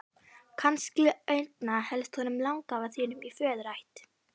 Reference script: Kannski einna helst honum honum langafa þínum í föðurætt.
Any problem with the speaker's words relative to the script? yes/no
yes